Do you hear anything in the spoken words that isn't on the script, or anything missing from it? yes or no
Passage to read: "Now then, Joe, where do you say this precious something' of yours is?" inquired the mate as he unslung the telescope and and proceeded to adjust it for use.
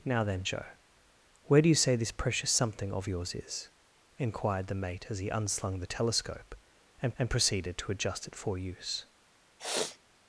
no